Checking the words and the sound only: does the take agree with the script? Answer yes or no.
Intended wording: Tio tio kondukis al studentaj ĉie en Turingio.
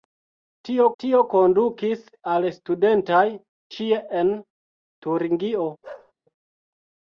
no